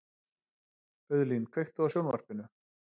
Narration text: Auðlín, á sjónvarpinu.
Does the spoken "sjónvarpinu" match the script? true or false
true